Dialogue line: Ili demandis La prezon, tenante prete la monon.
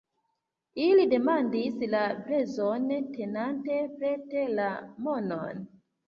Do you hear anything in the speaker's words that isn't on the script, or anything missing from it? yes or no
no